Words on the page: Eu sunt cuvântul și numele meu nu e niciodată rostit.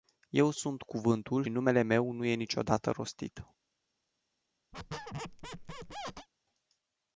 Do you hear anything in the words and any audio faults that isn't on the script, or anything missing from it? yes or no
yes